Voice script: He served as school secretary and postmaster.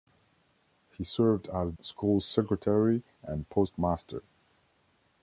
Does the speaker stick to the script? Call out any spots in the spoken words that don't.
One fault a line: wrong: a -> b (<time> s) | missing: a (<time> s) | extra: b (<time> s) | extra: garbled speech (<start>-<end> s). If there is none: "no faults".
no faults